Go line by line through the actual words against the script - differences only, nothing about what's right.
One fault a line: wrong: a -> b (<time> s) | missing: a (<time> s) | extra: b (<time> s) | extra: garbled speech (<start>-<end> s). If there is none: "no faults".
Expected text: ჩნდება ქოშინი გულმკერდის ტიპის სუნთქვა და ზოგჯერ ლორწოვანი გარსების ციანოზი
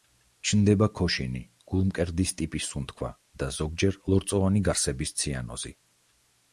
no faults